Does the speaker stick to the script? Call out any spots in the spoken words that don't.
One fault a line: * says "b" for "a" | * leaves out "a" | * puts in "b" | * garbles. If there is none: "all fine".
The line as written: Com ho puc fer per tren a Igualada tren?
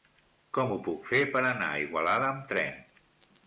* says "anar" for "tren"
* puts in "amb"